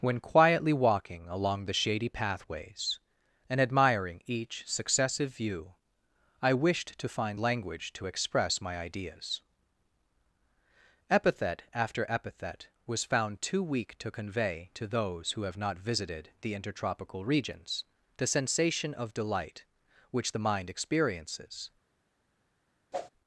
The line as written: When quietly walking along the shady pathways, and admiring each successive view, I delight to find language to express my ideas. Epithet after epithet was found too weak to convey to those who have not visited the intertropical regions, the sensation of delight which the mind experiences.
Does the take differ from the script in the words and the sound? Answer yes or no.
yes